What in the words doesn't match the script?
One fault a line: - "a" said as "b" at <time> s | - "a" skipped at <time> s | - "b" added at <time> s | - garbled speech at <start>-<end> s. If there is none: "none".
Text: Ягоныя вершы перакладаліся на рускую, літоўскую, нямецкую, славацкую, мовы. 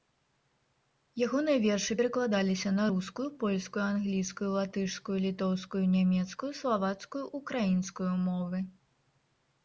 - "польскую англійскую латышскую" added at 3.4 s
- "украінскую" added at 7.4 s